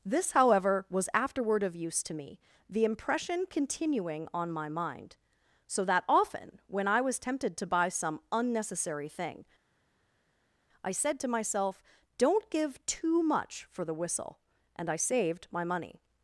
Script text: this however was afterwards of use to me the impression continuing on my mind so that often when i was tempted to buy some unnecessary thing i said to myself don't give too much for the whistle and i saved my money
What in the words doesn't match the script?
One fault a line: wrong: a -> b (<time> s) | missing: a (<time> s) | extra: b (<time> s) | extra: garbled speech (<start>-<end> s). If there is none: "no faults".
wrong: afterwards -> afterward (1.1 s)